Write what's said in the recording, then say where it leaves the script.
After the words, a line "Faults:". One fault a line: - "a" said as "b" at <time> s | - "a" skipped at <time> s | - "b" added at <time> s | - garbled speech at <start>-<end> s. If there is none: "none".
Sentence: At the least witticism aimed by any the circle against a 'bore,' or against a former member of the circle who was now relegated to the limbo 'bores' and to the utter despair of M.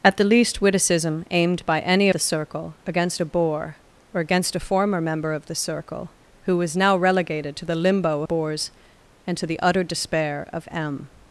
At the least witticism aimed by any the circle against a 'bore,' or against a former member of the circle who was now relegated to the limbo 'bores' and to the utter despair of M.
Faults:
none